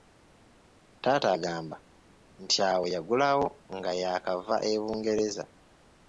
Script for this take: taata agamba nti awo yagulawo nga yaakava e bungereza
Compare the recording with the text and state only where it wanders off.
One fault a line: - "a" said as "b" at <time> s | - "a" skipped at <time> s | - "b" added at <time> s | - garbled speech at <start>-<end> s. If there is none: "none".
none